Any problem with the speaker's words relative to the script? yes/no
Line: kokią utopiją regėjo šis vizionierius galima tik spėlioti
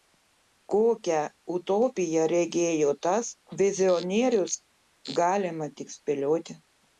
yes